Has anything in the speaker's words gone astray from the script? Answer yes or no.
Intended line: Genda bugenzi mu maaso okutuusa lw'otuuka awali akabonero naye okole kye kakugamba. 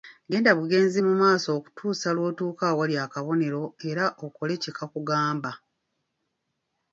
yes